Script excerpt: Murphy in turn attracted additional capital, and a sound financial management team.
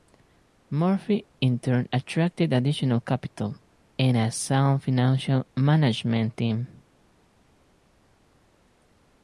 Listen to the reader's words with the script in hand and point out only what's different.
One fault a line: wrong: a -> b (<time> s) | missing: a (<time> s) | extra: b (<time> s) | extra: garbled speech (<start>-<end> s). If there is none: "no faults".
no faults